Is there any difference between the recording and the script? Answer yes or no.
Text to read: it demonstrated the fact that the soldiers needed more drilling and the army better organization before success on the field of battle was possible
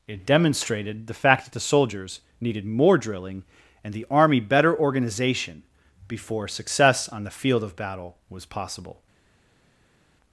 no